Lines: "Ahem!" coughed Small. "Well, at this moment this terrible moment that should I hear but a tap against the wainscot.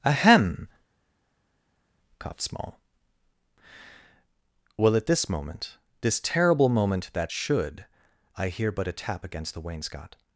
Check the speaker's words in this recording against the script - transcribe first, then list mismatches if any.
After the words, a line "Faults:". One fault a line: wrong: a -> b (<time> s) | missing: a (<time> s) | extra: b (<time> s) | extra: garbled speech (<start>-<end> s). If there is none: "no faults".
"Ahem!" coughed Small. "Well, at this moment this terrible moment that should I hear but a tap against the wainscot.
Faults:
no faults